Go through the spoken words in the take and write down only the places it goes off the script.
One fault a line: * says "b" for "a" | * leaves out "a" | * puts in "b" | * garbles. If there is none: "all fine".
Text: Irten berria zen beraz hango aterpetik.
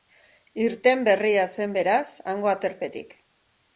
all fine